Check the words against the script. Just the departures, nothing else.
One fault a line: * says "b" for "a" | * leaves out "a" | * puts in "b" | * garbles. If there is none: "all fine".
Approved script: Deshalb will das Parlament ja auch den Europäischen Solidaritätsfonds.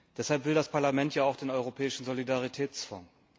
all fine